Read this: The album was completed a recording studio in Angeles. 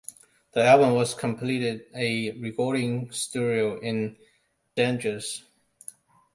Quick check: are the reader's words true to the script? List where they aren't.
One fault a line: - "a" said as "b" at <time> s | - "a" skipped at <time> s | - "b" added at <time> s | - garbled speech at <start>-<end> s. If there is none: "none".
none